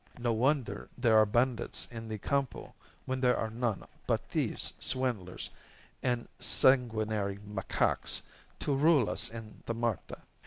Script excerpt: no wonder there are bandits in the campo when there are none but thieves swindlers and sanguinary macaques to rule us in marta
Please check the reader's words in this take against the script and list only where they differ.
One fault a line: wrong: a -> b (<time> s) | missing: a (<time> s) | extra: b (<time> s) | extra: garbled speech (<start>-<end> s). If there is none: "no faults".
no faults